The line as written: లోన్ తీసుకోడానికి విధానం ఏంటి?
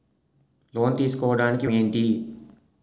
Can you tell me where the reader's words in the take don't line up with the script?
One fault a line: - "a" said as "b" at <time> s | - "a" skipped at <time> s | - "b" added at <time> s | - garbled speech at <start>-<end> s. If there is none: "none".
- "విధానం" skipped at 1.7 s